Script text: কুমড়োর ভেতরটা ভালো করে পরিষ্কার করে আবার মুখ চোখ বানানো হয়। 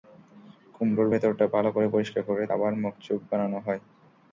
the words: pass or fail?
pass